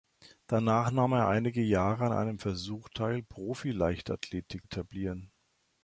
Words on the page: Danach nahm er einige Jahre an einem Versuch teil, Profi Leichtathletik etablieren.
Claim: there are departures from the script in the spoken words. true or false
false